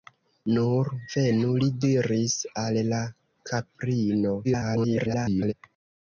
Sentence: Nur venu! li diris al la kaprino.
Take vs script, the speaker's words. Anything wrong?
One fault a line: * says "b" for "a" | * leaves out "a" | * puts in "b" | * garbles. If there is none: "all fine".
* garbles